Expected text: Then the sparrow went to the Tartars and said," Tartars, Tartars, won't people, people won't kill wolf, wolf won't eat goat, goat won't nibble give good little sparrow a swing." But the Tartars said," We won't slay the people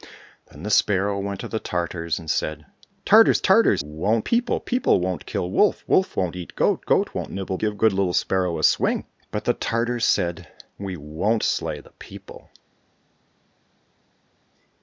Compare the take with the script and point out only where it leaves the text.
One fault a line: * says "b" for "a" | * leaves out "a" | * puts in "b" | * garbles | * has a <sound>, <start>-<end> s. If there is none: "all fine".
all fine